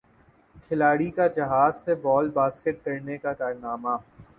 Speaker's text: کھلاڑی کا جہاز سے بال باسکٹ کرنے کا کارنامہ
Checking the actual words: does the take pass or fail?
pass